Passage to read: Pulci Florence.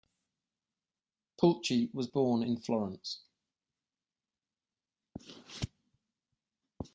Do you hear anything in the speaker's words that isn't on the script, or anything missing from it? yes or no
yes